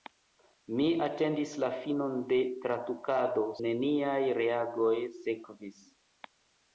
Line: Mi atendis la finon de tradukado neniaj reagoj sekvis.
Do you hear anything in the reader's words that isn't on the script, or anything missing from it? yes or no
no